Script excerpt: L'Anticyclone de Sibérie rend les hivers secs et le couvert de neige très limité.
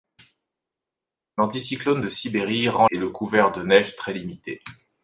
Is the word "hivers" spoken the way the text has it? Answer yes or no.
no